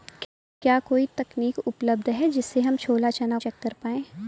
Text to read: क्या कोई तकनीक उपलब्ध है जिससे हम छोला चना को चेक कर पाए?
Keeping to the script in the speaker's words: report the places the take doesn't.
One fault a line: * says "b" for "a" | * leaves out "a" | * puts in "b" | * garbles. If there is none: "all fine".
* leaves out "को"